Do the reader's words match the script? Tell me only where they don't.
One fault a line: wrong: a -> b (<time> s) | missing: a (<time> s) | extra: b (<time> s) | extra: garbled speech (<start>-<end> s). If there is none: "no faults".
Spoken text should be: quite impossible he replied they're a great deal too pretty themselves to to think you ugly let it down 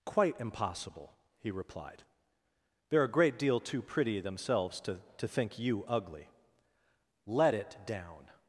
no faults